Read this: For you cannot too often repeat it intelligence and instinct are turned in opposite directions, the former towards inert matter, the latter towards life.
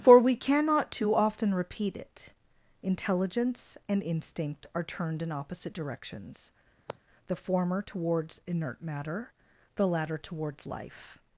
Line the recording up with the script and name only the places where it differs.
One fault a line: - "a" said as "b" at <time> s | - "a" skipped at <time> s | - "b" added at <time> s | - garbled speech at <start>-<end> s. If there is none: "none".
- "you" said as "we" at 0.2 s